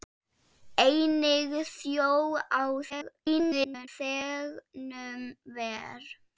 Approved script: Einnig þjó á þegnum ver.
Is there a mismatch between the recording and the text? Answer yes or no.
yes